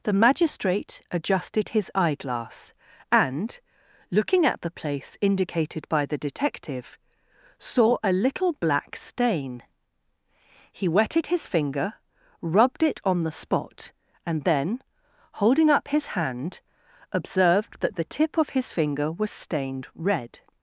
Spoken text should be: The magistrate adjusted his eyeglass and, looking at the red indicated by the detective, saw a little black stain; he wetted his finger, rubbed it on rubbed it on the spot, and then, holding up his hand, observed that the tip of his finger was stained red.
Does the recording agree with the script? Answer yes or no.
no